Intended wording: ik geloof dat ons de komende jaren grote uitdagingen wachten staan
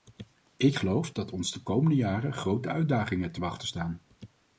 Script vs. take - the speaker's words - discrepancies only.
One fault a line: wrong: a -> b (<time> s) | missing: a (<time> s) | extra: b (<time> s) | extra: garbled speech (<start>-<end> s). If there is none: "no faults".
extra: te (3.3 s)